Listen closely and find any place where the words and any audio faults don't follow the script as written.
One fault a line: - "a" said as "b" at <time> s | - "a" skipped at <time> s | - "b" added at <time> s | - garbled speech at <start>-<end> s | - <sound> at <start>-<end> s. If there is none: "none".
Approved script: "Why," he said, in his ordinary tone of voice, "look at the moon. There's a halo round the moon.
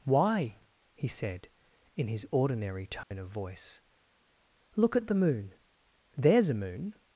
- dropout at 3.0-3.1 s
- "halo round the" skipped at 6.5 s